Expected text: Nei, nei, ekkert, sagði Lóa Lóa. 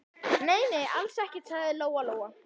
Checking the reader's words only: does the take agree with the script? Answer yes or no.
no